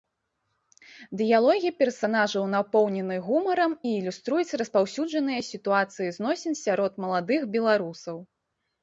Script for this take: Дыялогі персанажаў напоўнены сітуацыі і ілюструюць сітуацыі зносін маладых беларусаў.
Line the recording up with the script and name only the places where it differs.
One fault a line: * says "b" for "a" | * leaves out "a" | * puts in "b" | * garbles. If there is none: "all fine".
* says "гумарам" for "сітуацыі"
* puts in "распаўсюджаныя"
* puts in "сярод"